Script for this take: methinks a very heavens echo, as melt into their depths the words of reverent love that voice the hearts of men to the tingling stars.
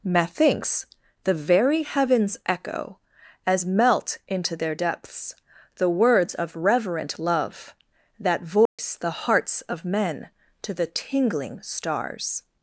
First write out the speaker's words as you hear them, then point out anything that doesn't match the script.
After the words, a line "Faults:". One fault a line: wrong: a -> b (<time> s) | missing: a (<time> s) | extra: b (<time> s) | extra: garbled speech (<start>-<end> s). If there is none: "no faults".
methinks the very heavens echo, as melt into their depths the words of reverent love that voice the hearts of men to the tingling stars.
Faults:
wrong: a -> the (1.2 s)